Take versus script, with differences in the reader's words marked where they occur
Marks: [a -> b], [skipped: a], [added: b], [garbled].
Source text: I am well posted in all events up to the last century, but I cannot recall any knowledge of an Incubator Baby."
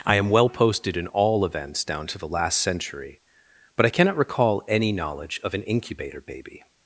I am well posted in all events [up -> down] to the last century, but I cannot recall any knowledge of an Incubator Baby."